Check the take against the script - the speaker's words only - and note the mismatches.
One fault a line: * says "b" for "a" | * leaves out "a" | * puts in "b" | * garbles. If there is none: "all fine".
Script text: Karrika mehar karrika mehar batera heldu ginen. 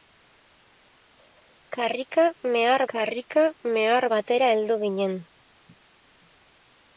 all fine